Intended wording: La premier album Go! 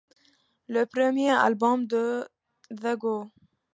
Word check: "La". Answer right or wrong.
wrong